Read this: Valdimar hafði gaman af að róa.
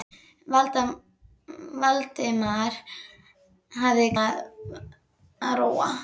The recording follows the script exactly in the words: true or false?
false